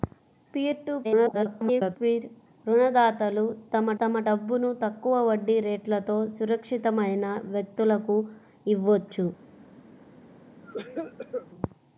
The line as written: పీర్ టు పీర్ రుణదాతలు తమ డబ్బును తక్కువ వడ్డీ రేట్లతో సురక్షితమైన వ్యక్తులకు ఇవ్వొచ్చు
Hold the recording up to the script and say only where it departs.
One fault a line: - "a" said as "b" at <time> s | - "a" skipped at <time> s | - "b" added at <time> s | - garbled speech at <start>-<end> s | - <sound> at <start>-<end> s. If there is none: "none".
- garbled speech at 1.0-2.0 s
- "తమ" added at 4.0 s
- cough at 10.6-11.5 s